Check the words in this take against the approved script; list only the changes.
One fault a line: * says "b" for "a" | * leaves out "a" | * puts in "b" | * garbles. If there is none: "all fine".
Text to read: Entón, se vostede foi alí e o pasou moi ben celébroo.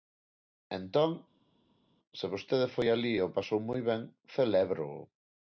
all fine